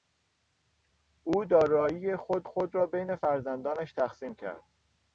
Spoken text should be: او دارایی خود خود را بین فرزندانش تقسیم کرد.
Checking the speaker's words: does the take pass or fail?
pass